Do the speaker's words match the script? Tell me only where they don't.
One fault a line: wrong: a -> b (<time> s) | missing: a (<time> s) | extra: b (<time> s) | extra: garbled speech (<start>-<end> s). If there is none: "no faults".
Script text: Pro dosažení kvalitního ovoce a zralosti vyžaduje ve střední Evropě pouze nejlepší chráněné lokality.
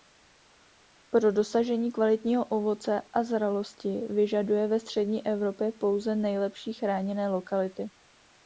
no faults